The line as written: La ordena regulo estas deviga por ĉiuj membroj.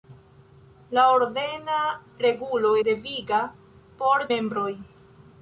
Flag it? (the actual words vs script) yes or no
yes